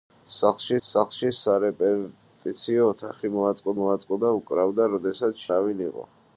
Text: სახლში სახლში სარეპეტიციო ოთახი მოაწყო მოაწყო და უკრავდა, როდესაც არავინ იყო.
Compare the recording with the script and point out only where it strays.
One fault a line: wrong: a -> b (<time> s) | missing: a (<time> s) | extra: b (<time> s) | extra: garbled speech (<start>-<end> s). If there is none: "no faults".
no faults